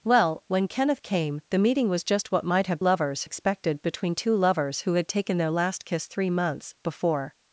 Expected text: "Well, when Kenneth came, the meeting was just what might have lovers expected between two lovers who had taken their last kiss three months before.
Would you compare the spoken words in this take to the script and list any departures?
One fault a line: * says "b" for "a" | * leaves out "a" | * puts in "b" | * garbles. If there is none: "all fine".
all fine